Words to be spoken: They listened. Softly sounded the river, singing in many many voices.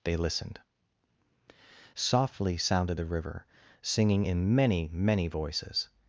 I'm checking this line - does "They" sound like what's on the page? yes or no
yes